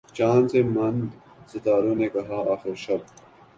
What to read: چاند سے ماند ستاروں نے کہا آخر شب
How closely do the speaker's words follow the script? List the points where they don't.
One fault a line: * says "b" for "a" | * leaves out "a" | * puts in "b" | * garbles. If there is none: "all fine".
all fine